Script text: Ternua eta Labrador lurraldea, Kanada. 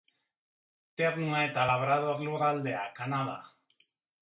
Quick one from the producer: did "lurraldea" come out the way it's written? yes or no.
yes